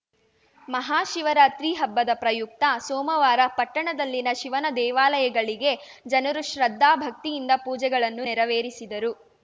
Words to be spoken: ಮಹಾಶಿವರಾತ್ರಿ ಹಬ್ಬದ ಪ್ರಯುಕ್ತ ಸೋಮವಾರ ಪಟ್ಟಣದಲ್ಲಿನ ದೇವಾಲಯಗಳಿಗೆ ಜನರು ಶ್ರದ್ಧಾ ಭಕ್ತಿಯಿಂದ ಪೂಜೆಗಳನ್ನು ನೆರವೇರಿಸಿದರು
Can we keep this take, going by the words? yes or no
no